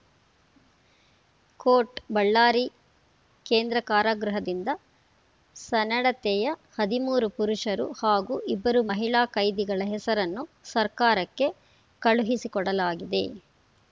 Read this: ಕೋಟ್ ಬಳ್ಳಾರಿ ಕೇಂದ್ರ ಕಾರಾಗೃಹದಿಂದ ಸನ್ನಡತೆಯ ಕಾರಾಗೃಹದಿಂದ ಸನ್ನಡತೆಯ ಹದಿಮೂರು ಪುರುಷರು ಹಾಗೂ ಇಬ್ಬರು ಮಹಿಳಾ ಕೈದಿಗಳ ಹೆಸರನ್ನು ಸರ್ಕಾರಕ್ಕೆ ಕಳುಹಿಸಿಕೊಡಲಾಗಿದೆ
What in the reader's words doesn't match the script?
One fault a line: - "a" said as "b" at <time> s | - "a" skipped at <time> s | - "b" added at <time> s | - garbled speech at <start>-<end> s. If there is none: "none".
- "ಕಾರಾಗೃಹದಿಂದ ಸನ್ನಡತೆಯ" skipped at 6.5 s